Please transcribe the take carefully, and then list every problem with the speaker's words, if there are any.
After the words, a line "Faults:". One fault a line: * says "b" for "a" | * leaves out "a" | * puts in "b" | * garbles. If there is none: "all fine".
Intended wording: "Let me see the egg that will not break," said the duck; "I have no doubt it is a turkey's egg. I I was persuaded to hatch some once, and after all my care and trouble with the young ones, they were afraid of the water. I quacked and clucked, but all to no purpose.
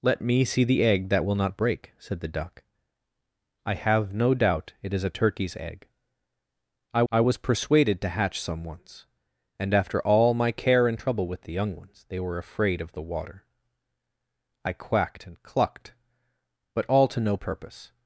"Let me see the egg that will not break," said the duck; "I have no doubt it is a turkey's egg. I I was persuaded to hatch some once, and after all my care and trouble with the young ones, they were afraid of the water. I quacked and clucked, but all to no purpose.
Faults:
all fine